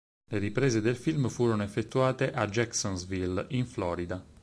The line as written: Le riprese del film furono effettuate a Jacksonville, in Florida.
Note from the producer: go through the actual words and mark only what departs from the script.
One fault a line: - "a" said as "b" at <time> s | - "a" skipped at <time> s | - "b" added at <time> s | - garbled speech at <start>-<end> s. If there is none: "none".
none